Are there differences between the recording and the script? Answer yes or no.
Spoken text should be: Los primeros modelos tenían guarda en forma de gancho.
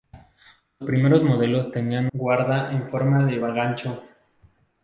no